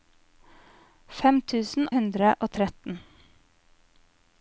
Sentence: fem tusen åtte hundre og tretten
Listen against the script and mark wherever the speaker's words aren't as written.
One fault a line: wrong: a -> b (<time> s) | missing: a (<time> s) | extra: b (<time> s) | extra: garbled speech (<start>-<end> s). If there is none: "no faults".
missing: åtte (1.9 s)